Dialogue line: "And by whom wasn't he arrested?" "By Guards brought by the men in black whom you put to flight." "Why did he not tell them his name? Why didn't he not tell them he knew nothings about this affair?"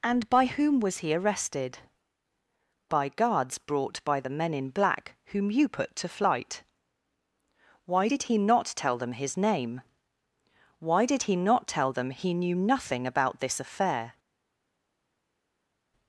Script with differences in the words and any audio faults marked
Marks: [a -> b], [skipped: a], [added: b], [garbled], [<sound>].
"And by whom [wasn't -> was] he arrested?" "By Guards brought by the men in black whom you put to flight." "Why did he not tell them his name? Why [didn't -> did] he not tell them he knew [nothings -> nothing] about this affair?"